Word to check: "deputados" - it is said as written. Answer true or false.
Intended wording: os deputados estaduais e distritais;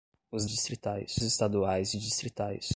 false